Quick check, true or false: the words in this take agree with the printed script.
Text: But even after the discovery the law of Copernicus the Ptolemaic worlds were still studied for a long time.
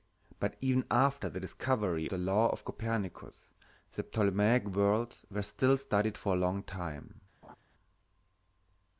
true